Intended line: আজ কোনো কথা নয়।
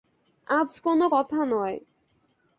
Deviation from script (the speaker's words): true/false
false